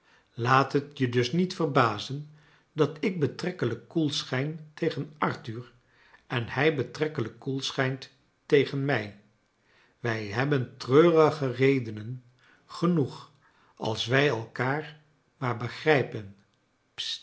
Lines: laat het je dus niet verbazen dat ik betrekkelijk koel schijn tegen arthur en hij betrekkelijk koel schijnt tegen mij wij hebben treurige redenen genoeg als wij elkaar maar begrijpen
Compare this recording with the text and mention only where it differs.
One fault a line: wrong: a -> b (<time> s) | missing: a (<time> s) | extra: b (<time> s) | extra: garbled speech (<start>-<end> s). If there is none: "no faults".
no faults